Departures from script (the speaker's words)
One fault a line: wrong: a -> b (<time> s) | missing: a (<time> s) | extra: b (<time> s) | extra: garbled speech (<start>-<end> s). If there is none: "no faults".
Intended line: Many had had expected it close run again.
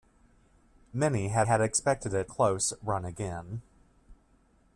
no faults